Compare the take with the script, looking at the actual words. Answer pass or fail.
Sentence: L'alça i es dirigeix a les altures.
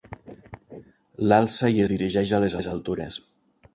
fail